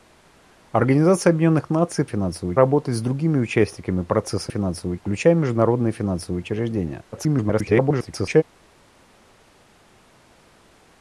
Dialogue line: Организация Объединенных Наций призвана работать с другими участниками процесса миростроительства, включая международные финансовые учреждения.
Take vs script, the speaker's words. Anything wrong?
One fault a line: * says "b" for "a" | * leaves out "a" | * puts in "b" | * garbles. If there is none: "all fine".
* says "финансовые" for "призвана"
* says "финансовые" for "миростроительства"
* garbles